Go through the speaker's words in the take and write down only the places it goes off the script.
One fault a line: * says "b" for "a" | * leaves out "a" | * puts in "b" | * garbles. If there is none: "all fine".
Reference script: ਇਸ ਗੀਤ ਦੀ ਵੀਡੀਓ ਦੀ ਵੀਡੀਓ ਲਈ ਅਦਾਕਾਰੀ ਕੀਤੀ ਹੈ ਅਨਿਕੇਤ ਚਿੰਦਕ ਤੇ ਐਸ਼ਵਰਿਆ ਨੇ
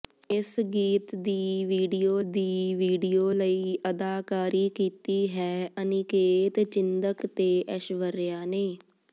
all fine